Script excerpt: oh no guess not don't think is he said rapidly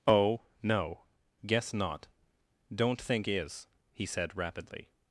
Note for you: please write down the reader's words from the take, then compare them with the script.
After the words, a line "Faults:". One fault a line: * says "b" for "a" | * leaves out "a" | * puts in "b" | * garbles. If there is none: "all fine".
oh no guess not don't think is he said rapidly
Faults:
all fine